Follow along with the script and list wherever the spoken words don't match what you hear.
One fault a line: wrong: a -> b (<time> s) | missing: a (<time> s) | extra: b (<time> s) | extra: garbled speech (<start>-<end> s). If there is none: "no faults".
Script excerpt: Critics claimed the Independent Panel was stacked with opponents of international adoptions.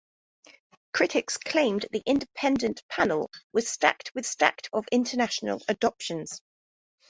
wrong: opponents -> stacked (4.3 s)